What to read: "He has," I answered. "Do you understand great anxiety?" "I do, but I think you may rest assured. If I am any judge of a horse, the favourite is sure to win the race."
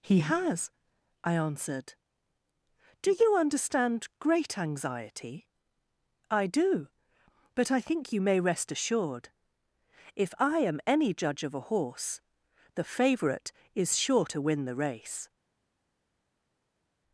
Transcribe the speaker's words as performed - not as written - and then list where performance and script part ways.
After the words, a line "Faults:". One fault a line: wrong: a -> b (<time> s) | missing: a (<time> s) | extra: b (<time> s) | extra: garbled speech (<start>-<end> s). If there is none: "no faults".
"He has," I answered. "Do you understand great anxiety?" "I do, but I think you may rest assured. If I am any judge of a horse, the favourite is sure to win the race."
Faults:
no faults